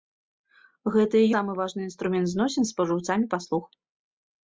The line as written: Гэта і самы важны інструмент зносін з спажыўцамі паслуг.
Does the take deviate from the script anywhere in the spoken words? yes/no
no